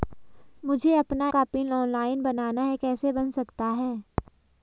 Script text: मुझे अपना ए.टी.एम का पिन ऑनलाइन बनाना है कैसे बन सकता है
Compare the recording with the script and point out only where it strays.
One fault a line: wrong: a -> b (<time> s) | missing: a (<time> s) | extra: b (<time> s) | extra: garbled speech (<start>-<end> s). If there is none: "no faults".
missing: ए.टी.एम (1.3 s)